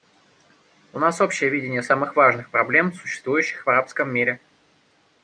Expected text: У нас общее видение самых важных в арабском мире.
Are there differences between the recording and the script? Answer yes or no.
yes